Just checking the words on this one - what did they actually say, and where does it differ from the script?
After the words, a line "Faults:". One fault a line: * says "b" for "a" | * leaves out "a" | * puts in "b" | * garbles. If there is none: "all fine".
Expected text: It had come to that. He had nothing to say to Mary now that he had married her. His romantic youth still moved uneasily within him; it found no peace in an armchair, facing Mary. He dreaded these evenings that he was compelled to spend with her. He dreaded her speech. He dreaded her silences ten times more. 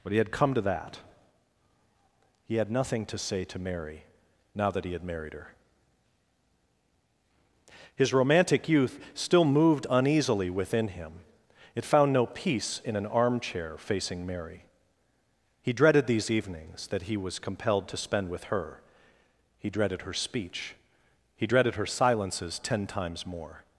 But he had come to that. He had nothing to say to Mary now that he had married her. His romantic youth still moved uneasily within him; it found no peace in an armchair, facing Mary. He dreaded these evenings that he was compelled to spend with her. He dreaded her speech. He dreaded her silences ten times more.
Faults:
* says "But he" for "It"